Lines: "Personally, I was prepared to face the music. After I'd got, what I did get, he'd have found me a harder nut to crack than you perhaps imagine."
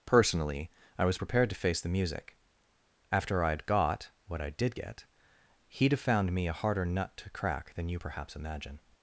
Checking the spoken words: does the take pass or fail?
pass